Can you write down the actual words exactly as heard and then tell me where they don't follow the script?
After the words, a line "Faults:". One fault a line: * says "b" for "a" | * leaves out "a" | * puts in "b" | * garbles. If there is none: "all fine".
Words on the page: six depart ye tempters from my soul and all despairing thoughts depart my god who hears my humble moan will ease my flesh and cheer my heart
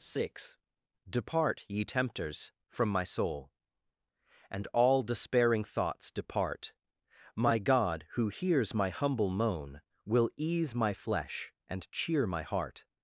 six depart ye tempters from my soul and all despairing thoughts depart my god who hears my humble moan will ease my flesh and cheer my heart
Faults:
all fine